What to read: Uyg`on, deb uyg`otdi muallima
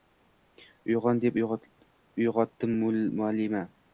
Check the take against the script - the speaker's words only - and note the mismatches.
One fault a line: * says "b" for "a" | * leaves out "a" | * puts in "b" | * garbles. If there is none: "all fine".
all fine